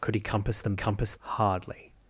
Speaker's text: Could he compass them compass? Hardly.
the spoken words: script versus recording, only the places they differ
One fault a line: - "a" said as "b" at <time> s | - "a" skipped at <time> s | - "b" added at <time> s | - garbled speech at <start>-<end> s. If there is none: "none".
none